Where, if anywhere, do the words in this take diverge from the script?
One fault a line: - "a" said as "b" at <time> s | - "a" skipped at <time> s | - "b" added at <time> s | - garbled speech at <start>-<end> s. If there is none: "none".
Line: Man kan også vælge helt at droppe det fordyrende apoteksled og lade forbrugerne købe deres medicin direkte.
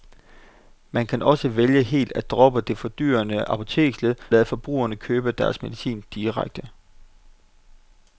- "og" skipped at 4.2 s